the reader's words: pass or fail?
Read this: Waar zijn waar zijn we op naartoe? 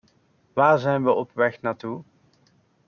fail